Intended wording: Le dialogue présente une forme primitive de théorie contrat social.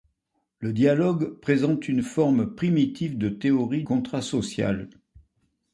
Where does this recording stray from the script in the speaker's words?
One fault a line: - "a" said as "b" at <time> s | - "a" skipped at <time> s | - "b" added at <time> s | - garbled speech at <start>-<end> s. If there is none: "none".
none